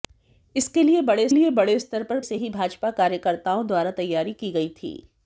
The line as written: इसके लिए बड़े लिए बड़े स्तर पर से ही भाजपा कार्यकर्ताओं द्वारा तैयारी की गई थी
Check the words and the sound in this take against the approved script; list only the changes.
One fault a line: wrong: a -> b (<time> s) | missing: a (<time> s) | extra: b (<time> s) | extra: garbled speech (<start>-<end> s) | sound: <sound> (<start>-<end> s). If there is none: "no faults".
no faults